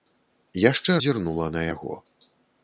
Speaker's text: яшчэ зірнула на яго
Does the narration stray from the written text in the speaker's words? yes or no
no